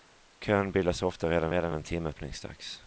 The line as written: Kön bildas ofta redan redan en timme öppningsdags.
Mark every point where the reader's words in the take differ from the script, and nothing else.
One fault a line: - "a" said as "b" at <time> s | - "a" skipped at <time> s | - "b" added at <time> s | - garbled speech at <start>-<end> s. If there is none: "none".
none